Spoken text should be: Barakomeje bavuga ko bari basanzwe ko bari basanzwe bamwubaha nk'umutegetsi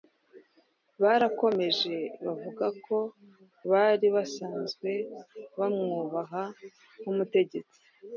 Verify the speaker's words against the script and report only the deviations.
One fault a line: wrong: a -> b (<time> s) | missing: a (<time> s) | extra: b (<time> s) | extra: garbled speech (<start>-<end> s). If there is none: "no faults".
missing: ko bari basanzwe (4.9 s)